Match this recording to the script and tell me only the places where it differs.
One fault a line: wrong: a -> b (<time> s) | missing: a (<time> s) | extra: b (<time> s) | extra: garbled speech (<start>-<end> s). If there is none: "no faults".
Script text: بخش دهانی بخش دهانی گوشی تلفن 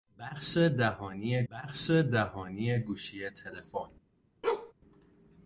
no faults